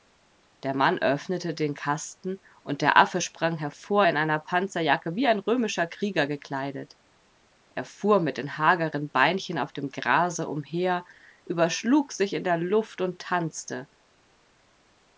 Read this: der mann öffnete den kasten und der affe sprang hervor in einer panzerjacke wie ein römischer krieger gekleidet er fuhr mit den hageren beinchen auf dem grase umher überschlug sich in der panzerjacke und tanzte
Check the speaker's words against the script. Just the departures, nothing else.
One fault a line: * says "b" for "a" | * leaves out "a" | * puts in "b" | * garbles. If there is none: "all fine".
* says "luft" for "panzerjacke"